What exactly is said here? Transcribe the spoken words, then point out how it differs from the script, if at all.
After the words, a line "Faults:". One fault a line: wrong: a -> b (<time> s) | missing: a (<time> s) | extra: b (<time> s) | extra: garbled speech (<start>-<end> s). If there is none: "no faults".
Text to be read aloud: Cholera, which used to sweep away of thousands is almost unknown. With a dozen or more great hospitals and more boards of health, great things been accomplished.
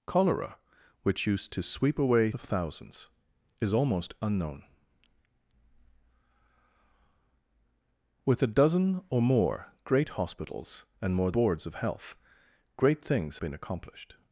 Cholera, which used to sweep away of thousands is almost unknown. With a dozen or more great hospitals and more boards of health, great things been accomplished.
Faults:
no faults